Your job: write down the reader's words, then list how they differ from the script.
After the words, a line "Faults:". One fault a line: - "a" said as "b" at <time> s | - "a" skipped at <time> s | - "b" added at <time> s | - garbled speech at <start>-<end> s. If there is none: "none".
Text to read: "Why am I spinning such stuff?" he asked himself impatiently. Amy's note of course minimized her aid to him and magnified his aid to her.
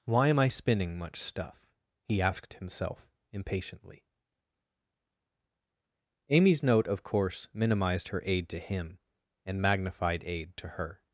"Why am I spinning much stuff?" he asked himself impatiently. Amy's note of course minimized her aid to him and magnified aid to her.
Faults:
- "such" said as "much" at 1.0 s
- "his" skipped at 10.2 s